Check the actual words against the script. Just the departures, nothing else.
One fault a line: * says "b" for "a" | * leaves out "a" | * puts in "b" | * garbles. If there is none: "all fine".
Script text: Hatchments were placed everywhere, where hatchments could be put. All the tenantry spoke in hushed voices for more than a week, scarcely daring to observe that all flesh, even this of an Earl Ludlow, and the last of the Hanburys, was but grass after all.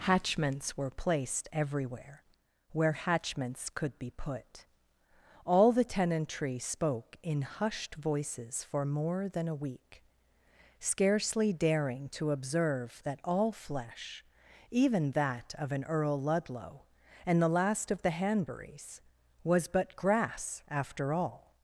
* says "that" for "this"